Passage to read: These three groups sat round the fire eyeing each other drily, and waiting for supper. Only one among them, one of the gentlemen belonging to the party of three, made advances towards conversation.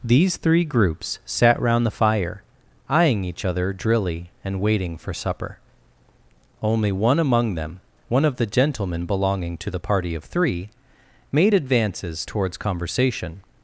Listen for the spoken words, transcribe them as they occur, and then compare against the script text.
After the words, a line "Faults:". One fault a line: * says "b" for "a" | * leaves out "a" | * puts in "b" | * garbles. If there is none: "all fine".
These three groups sat round the fire eyeing each other drily, and waiting for supper. Only one among them, one of the gentlemen belonging to the party of three, made advances towards conversation.
Faults:
all fine